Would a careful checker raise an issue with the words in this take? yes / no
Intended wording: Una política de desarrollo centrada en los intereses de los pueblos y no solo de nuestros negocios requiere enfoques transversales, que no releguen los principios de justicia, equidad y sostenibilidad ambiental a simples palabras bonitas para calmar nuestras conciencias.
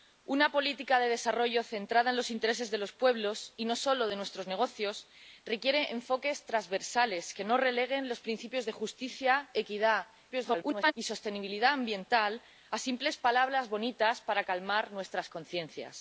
yes